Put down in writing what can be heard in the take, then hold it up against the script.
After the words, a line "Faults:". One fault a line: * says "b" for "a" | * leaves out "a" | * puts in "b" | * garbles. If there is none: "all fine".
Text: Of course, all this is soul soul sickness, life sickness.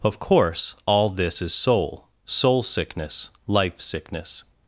Of course, all this is soul soul sickness, life sickness.
Faults:
all fine